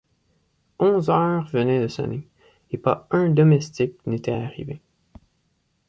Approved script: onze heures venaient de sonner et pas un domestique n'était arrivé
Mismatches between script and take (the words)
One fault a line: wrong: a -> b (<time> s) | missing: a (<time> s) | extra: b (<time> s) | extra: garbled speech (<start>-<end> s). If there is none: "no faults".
no faults